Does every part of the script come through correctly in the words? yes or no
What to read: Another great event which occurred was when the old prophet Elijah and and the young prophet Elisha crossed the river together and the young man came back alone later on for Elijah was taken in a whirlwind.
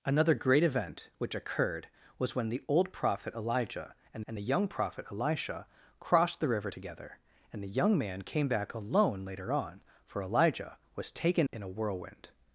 yes